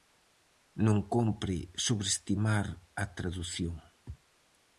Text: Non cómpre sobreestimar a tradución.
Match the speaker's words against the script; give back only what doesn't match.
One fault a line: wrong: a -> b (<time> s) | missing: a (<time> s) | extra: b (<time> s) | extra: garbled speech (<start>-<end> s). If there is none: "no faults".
no faults